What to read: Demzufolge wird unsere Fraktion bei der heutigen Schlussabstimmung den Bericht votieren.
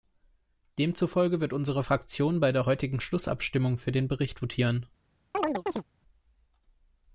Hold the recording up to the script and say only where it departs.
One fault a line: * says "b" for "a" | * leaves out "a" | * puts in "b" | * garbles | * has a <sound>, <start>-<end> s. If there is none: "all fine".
* puts in "für"
* has a chirp, 5.3-5.8 s